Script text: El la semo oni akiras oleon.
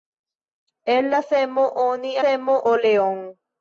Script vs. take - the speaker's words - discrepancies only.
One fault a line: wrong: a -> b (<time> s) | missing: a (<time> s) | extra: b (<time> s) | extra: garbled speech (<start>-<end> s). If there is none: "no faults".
wrong: akiras -> semo (2.2 s)